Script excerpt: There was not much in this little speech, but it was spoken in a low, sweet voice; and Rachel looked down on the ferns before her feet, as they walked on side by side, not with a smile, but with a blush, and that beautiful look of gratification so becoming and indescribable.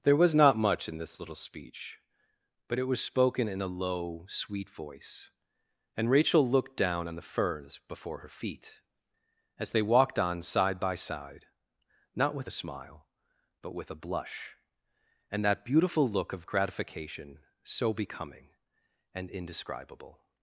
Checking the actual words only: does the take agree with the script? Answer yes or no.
yes